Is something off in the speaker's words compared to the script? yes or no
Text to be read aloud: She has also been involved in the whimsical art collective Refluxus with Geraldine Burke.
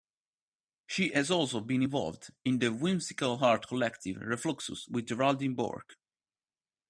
no